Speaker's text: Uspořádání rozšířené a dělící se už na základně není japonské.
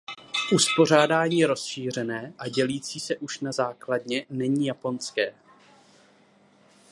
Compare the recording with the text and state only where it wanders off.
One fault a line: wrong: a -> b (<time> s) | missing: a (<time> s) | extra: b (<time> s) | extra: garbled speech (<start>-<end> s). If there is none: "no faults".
no faults